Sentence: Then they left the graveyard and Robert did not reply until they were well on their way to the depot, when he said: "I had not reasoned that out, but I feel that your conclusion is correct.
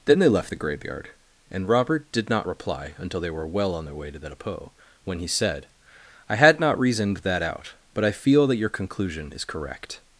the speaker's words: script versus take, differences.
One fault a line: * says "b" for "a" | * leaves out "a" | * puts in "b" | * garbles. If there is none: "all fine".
all fine